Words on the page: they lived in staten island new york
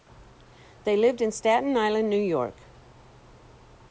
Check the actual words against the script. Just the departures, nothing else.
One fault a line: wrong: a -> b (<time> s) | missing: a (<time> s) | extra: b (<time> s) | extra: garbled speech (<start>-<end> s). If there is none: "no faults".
no faults